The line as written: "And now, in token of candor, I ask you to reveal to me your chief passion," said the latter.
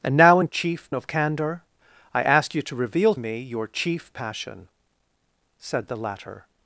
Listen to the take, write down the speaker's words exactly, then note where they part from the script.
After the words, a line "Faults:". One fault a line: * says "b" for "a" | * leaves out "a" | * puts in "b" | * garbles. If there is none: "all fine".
"And now, in chief of candor, I ask you to reveal me your chief passion," said the latter.
Faults:
* says "chief" for "token"
* leaves out "to"